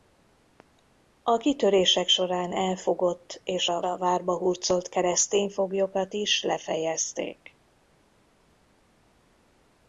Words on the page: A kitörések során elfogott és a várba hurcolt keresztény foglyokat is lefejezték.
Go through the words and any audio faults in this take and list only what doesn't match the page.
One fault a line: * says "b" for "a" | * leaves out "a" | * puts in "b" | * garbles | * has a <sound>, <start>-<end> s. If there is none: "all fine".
* puts in "a"